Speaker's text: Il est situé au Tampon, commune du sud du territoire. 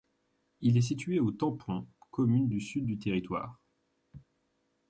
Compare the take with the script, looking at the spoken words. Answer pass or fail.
pass